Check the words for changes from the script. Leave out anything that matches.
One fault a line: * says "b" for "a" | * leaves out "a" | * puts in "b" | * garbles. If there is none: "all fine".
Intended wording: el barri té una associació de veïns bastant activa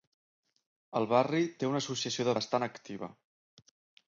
* leaves out "veïns"